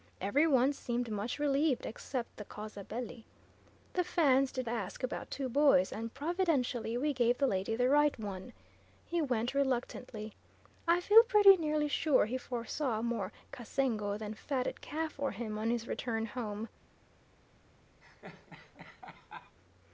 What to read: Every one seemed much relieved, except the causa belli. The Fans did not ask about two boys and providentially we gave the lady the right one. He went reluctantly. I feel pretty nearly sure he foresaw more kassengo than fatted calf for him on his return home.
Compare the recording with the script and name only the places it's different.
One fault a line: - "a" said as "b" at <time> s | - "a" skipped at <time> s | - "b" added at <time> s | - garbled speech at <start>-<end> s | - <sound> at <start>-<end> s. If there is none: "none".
- "not" skipped at 4.7 s
- laugh at 18.0-19.6 s